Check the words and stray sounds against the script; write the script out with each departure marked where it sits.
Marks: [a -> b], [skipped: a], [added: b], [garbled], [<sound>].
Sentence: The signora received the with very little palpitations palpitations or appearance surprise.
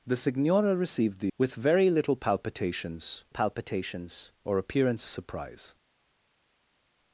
The signora received the with very little palpitations palpitations or appearance surprise.